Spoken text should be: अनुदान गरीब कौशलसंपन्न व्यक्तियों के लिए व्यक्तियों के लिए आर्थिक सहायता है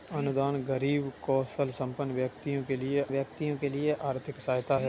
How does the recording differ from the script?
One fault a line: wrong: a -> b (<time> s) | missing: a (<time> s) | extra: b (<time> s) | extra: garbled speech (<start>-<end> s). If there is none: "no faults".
no faults